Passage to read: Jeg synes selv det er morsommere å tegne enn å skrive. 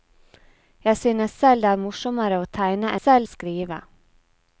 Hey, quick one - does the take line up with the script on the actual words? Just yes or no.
no